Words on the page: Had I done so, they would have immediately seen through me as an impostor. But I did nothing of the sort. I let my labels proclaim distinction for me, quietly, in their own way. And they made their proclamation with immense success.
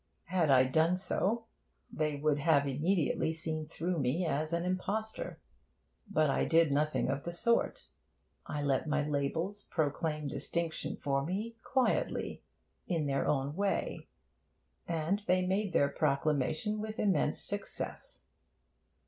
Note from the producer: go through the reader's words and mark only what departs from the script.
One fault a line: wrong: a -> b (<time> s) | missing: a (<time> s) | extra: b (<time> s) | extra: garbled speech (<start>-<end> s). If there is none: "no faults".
no faults